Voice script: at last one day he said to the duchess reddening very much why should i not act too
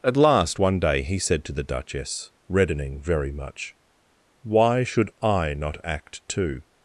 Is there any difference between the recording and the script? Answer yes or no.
no